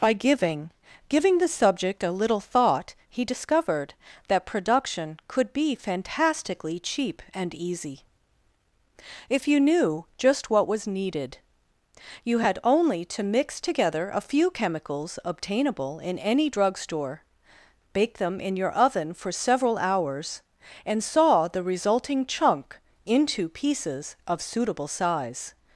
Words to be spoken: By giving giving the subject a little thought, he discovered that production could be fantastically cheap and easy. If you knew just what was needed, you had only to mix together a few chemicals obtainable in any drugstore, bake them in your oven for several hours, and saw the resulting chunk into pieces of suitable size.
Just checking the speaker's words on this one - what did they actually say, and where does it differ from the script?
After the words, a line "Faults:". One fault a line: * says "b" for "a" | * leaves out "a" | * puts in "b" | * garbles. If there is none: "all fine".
By giving giving the subject a little thought, he discovered that production could be fantastically cheap and easy. If you knew just what was needed, you had only to mix together a few chemicals obtainable in any drugstore, bake them in your oven for several hours, and saw the resulting chunk into pieces of suitable size.
Faults:
all fine